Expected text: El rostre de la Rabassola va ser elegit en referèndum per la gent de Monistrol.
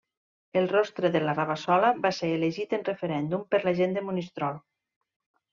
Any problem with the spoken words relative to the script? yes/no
no